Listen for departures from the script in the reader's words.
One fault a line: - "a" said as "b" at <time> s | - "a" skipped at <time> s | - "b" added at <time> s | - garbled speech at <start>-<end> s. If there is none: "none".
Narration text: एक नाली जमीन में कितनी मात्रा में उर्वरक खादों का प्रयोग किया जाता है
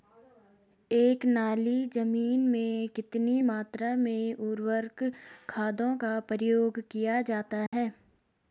none